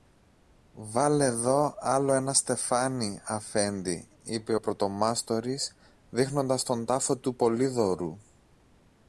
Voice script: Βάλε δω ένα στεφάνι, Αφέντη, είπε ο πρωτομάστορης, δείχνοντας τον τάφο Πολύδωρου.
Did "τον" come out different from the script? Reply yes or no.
no